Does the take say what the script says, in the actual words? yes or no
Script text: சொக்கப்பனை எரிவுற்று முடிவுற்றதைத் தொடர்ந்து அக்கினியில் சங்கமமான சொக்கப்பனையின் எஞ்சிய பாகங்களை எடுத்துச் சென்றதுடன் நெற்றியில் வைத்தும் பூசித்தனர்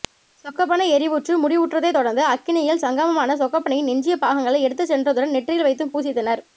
yes